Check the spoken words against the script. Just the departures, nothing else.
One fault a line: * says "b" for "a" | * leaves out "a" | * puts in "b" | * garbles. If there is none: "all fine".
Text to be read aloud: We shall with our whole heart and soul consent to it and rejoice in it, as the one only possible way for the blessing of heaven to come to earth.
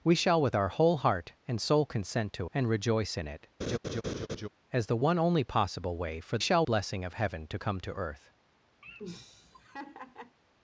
* leaves out "it"
* says "shall" for "the"